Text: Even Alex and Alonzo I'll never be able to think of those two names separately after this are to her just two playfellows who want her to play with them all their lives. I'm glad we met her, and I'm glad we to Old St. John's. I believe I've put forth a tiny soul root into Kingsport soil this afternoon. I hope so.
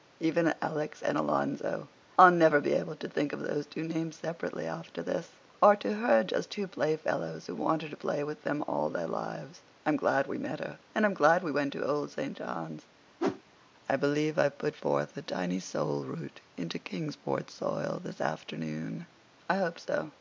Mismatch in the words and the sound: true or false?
true